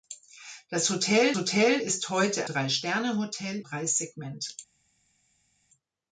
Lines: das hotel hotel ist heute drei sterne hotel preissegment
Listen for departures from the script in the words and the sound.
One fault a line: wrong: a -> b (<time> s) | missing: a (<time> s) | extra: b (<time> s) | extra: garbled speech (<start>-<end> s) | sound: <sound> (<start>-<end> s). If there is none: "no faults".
no faults